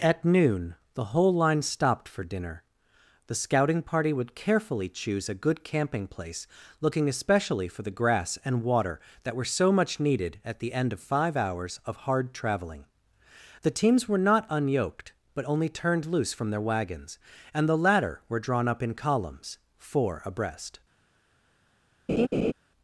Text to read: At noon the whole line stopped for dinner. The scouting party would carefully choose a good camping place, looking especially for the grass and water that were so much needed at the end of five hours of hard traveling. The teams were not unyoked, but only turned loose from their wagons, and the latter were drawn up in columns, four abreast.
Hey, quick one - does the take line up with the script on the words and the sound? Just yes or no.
no